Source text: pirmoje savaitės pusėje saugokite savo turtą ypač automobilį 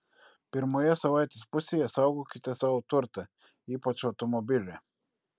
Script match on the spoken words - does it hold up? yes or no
yes